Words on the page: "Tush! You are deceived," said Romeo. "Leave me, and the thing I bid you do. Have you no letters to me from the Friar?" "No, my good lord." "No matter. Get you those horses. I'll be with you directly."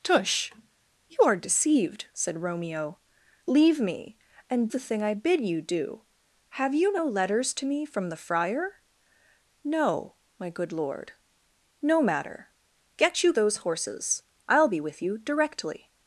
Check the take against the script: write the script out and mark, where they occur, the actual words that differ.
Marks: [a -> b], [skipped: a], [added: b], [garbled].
"Tush! You are deceived," said Romeo. "Leave me, and the thing I bid you do. Have you no letters to me from the Friar?" "No, my good lord." "No matter. Get you those horses. I'll be with you directly."